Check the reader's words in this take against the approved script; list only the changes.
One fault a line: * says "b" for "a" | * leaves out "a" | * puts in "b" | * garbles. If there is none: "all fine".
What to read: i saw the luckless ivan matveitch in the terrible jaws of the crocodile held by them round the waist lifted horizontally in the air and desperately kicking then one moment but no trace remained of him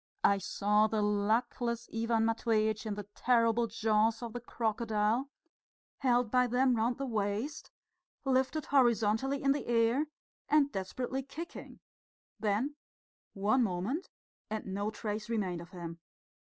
* says "and" for "but"